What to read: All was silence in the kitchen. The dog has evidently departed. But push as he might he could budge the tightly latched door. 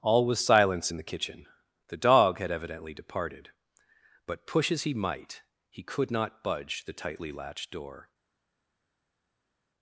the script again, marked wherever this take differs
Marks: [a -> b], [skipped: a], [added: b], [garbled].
All was silence in the kitchen. The dog [has -> had] evidently departed. But push as he might he could [added: not] budge the tightly latched door.